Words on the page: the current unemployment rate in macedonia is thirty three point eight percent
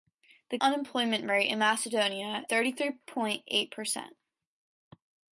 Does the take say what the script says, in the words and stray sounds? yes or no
no